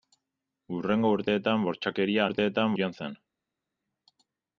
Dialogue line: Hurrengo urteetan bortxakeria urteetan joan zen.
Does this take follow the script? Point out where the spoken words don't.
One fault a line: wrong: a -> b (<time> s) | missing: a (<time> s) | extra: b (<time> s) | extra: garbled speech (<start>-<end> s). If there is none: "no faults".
no faults